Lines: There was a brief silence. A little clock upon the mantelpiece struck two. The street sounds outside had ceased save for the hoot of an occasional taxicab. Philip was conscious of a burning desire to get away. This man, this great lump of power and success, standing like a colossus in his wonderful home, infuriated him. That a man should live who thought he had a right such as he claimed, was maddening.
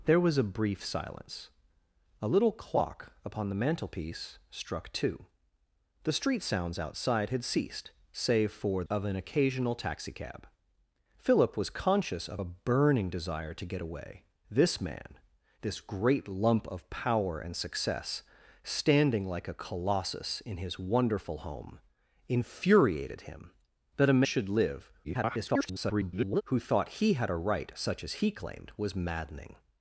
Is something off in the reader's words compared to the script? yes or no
yes